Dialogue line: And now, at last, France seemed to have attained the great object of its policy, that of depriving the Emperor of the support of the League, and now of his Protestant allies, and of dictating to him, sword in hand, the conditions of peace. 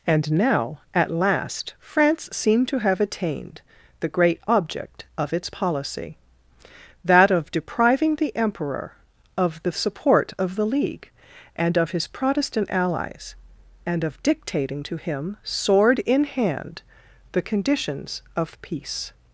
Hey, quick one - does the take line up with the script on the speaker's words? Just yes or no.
no